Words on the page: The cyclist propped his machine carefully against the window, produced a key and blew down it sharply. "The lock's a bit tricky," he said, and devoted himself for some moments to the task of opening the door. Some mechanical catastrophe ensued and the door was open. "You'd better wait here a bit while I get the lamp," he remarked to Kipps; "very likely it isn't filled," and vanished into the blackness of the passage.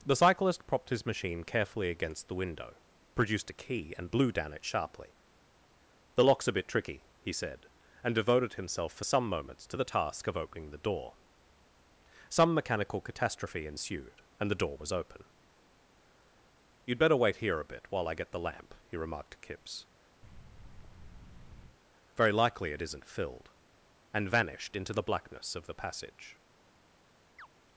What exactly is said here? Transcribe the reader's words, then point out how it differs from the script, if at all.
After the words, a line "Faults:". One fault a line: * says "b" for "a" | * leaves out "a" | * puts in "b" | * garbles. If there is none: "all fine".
The cyclist propped his machine carefully against the window, produced a key and blew down it sharply. "The lock's a bit tricky," he said, and devoted himself for some moments to the task of opening the door. Some mechanical catastrophe ensued and the door was open. "You'd better wait here a bit while I get the lamp," he remarked to Kipps; "very likely it isn't filled," and vanished into the blackness of the passage.
Faults:
all fine